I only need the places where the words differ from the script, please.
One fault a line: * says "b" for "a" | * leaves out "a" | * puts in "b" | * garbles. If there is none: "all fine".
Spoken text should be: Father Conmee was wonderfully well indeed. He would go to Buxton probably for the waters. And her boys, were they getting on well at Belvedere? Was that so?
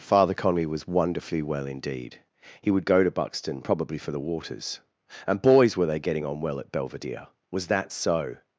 * leaves out "her"